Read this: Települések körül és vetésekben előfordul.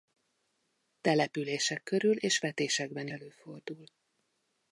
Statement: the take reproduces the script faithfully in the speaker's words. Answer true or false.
true